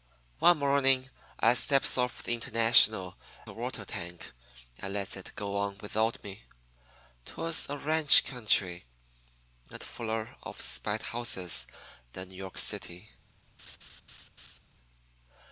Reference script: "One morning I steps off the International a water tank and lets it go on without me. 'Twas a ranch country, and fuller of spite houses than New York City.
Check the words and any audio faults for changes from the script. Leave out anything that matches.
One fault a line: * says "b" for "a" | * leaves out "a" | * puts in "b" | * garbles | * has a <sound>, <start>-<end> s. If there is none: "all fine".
* has a laugh, 13.6-14.6 s